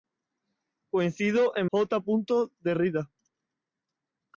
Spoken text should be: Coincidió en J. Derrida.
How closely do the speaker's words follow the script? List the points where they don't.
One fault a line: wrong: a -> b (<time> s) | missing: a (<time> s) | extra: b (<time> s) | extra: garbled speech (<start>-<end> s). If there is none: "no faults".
no faults